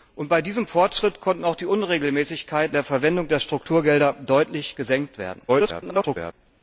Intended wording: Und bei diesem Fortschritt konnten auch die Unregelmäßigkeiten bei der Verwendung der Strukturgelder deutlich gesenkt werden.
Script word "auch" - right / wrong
right